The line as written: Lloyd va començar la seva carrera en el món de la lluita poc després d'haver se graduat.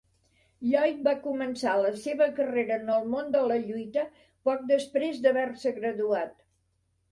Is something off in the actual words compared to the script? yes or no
no